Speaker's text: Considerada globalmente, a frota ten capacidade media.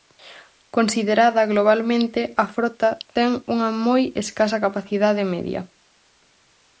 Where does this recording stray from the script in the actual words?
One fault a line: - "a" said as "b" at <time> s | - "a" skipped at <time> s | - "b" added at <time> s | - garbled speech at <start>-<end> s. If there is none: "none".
- "unha moi escasa" added at 3.5 s